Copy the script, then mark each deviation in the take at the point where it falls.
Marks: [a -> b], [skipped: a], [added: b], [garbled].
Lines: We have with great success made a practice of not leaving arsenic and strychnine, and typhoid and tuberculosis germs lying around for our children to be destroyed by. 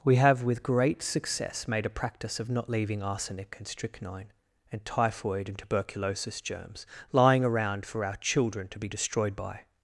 We have with great success made a practice of not leaving arsenic and strychnine, and typhoid and tuberculosis germs lying around for our children to be destroyed by.